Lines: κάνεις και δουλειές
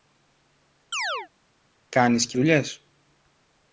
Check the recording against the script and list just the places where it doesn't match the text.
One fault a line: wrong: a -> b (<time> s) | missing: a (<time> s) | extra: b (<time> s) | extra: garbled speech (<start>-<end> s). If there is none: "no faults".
no faults